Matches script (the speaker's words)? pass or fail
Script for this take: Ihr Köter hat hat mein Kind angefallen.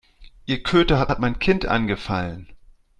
pass